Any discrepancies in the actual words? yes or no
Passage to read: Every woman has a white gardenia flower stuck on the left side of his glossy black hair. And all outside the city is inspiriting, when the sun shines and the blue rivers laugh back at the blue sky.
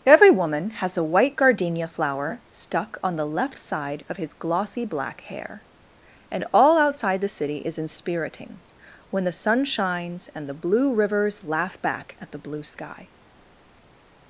no